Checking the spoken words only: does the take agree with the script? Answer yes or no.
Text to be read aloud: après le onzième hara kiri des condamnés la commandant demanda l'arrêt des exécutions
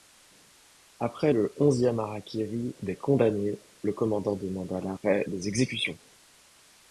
no